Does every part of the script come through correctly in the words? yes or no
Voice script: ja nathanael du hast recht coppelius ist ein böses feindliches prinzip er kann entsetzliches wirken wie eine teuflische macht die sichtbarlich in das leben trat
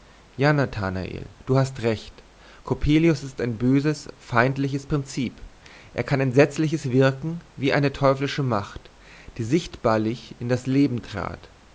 yes